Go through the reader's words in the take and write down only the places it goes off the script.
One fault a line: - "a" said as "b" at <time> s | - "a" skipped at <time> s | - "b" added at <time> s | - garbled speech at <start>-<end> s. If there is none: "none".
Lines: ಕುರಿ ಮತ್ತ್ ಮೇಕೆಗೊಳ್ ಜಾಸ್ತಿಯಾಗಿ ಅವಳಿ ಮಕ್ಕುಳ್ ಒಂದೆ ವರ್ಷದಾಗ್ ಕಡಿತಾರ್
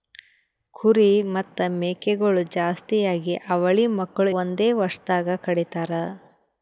none